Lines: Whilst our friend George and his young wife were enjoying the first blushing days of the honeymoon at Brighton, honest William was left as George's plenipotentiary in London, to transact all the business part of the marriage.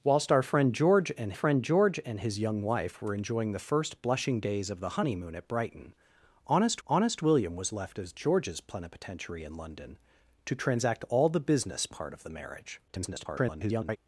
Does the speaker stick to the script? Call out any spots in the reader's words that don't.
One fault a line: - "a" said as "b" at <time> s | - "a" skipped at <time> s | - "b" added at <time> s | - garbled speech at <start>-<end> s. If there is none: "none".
- "friend George and" added at 1.3 s
- "honest" added at 6.9 s
- garbled speech at 12.9-14.0 s